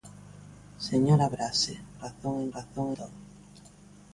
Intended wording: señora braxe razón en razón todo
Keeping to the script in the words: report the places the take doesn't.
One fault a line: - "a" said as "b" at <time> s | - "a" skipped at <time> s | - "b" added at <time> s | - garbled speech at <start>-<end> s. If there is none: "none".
none